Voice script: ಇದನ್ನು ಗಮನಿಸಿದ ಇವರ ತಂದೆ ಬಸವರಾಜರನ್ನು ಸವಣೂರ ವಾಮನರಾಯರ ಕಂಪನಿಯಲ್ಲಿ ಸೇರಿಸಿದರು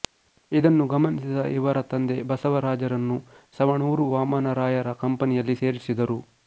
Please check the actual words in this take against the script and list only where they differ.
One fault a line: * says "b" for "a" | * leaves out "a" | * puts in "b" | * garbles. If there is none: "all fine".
all fine